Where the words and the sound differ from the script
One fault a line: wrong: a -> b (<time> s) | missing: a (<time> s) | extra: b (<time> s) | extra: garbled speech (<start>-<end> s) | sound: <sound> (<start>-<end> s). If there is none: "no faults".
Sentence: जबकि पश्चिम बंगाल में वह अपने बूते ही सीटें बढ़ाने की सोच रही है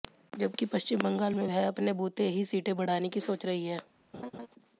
sound: laugh (4.1-4.5 s)